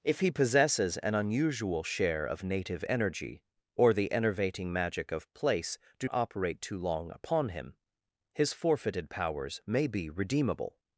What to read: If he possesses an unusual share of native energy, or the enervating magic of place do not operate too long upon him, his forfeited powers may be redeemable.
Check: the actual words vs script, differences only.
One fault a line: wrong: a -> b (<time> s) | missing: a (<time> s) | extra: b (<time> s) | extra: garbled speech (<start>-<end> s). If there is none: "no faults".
missing: not (6.1 s)